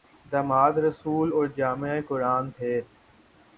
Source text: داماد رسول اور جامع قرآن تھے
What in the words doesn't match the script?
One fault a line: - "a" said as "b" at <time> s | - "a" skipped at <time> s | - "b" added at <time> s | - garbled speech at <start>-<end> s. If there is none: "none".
none